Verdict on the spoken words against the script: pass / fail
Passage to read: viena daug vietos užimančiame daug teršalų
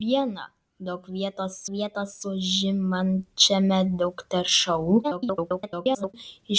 fail